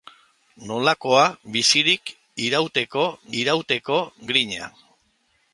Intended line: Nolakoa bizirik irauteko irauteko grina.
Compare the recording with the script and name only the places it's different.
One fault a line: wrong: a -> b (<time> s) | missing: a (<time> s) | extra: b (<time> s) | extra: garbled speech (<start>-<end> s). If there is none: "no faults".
no faults